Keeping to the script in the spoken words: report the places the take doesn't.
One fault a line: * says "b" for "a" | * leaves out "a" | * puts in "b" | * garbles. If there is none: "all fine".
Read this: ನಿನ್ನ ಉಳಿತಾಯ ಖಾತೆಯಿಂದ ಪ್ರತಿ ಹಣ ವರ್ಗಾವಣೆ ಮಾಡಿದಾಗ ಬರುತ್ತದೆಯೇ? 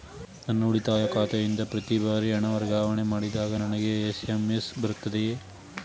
* says "ನನ್ನ" for "ನಿನ್ನ"
* puts in "ಬಾರಿ"
* puts in "ನನಗೆ ಎಸ್.ಎಂ.ಎಸ್"